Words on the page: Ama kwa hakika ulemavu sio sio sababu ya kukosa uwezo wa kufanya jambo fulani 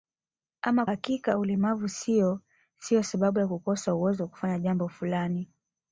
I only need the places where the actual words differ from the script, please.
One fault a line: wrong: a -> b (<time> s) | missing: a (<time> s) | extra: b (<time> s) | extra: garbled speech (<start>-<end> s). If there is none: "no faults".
missing: kwa (0.8 s)